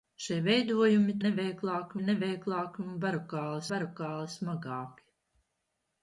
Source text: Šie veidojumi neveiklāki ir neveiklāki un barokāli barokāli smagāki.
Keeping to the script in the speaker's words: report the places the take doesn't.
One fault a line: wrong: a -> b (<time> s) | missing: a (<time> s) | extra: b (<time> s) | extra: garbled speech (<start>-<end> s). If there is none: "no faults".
no faults